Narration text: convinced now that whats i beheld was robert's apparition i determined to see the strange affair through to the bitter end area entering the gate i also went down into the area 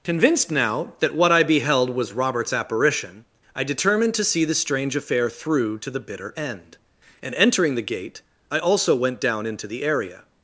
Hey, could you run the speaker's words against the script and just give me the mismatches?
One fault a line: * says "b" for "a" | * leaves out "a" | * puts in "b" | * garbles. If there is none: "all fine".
* says "what" for "whats"
* says "and" for "area"